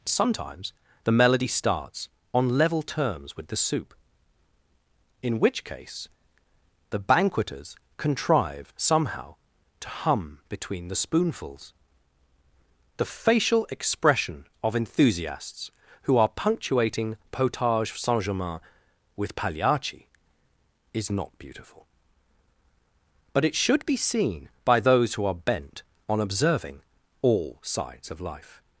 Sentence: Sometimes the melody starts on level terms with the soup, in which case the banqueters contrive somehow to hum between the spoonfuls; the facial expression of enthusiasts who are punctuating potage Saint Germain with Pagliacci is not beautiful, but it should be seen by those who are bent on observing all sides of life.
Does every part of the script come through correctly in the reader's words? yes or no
yes